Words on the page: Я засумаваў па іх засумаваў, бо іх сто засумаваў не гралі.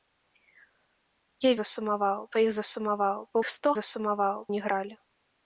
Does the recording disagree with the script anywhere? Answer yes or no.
no